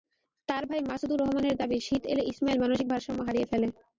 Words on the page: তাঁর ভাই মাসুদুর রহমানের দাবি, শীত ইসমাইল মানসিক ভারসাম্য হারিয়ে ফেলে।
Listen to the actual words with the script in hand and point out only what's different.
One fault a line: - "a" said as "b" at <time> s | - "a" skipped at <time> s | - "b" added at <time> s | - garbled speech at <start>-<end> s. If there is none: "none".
- "এলে" added at 2.1 s